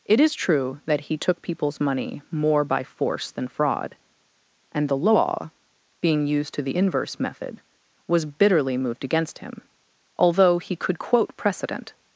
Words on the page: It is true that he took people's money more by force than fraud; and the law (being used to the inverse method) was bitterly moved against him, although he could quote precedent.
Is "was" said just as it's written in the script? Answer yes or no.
yes